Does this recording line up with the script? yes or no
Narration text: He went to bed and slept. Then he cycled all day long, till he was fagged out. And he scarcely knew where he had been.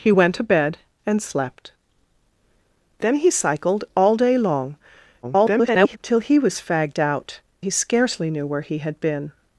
no